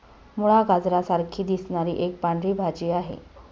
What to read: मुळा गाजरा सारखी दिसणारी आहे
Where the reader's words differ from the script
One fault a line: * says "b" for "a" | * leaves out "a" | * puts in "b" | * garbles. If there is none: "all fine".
* puts in "एक पांढरी भाजी"